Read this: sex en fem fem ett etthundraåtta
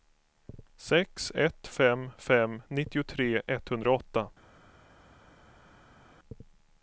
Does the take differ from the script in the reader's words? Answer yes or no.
yes